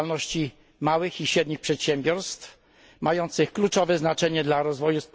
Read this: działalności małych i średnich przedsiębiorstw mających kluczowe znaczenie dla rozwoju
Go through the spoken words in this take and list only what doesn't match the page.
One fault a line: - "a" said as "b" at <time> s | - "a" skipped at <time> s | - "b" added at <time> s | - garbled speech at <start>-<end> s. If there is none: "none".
none